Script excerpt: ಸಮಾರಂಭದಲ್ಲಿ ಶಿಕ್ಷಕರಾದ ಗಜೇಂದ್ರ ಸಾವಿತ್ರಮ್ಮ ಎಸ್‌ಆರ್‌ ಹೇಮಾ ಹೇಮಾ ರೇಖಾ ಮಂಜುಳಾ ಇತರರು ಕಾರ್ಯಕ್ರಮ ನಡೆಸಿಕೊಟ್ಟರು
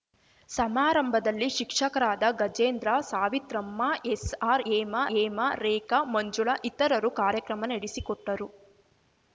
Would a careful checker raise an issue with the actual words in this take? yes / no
no